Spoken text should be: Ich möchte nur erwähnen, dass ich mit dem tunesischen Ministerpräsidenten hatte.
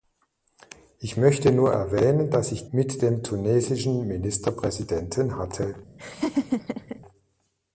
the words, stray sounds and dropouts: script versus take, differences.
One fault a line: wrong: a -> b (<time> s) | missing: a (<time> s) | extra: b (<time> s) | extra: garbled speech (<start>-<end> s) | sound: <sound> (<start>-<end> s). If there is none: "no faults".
sound: laugh (6.0-7.0 s)